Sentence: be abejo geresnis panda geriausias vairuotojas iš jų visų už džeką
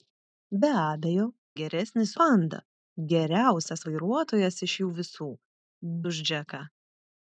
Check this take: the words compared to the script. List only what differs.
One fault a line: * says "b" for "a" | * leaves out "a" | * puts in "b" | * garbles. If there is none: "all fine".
all fine